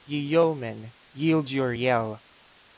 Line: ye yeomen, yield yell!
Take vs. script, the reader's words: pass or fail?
fail